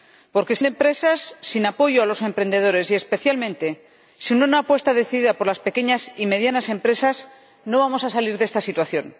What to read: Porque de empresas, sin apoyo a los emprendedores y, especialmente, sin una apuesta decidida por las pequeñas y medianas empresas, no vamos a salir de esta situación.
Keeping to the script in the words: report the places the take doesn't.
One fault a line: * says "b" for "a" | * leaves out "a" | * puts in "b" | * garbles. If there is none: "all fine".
all fine